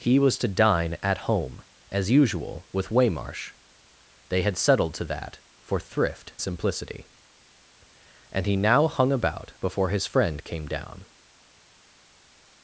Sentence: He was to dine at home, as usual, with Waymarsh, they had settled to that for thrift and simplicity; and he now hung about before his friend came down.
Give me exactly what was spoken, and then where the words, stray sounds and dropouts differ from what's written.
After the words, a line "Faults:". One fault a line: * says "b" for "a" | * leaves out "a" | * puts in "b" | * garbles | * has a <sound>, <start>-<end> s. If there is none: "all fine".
He was to dine at home, as usual, with Waymarsh, they had settled to that for thrift simplicity; and he now hung about before his friend came down.
Faults:
* leaves out "and"